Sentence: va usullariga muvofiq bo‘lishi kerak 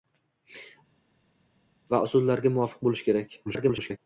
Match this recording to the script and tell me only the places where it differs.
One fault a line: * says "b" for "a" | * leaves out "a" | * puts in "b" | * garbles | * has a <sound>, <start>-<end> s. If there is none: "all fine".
* garbles